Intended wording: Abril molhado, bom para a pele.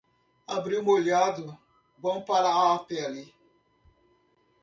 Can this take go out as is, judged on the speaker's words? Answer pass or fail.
pass